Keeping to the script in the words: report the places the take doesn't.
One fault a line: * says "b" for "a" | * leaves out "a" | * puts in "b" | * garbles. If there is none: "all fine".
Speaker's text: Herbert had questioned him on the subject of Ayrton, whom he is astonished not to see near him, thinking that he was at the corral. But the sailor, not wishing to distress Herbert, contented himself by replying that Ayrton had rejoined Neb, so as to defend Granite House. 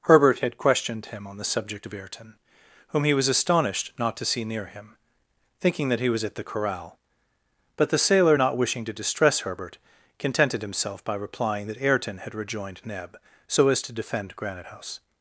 * says "was" for "is"